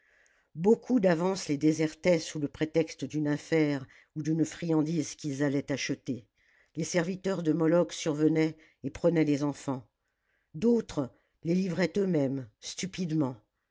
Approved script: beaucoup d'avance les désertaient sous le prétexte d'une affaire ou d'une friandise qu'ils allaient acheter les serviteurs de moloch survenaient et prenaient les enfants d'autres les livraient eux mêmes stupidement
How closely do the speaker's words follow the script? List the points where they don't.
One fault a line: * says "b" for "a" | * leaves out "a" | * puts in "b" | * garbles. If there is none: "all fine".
all fine